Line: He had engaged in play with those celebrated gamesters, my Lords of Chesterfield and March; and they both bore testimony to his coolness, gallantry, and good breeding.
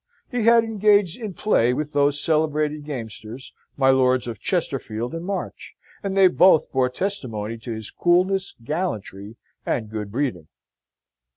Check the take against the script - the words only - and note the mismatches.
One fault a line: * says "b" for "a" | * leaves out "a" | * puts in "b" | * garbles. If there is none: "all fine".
all fine